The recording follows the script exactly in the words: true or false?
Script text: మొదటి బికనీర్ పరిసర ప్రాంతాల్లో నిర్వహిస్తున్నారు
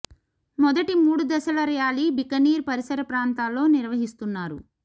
false